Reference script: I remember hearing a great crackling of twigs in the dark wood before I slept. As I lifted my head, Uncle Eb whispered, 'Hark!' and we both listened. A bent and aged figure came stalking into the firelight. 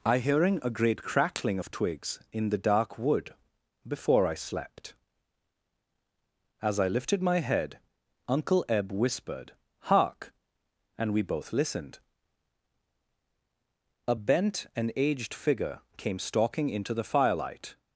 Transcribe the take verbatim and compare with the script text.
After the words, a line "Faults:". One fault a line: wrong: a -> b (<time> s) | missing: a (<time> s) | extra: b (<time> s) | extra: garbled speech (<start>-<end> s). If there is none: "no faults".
I hearing a great crackling of twigs in the dark wood before I slept. As I lifted my head, Uncle Eb whispered, 'Hark!' and we both listened. A bent and aged figure came stalking into the firelight.
Faults:
missing: remember (0.2 s)